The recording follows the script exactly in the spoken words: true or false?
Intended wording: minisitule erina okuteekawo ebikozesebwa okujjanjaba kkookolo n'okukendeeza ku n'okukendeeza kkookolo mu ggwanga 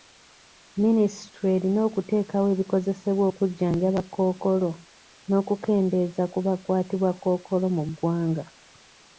false